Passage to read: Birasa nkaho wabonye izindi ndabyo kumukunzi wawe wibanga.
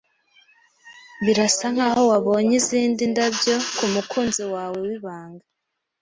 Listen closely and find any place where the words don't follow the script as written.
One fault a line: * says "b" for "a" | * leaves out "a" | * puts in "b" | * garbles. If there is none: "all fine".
all fine